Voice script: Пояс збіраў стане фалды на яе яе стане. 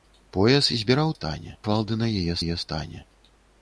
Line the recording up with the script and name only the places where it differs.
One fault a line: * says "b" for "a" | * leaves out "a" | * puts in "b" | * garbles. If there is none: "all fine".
all fine